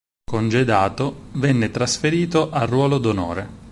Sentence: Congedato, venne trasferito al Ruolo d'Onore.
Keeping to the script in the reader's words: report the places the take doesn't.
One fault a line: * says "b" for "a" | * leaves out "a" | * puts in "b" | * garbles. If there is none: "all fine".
all fine